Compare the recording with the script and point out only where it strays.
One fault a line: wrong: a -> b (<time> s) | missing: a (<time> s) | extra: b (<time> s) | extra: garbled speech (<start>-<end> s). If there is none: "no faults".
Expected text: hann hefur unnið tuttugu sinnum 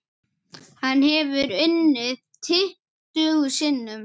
no faults